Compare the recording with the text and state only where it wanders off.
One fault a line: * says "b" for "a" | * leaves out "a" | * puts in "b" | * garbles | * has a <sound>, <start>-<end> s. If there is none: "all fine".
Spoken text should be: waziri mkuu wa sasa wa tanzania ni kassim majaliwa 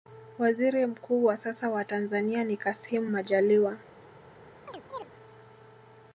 * has a chirp, 4.7-5.1 s